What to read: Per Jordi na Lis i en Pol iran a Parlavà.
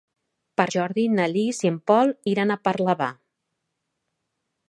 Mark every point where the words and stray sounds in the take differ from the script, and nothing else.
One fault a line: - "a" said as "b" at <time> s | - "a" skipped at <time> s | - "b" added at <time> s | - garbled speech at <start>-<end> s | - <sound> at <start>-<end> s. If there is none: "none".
none